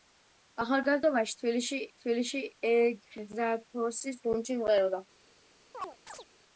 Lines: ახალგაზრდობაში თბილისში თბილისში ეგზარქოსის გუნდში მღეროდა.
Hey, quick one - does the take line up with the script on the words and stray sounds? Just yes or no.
no